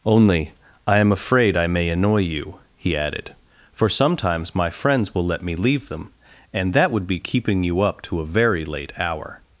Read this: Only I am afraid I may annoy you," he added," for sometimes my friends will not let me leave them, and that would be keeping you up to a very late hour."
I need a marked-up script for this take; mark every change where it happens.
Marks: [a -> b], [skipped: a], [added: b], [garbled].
Only I am afraid I may annoy you," he added," for sometimes my friends will [skipped: not] let me leave them, and that would be keeping you up to a very late hour."